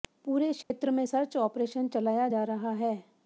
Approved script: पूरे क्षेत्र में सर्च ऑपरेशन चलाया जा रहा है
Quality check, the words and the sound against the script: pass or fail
fail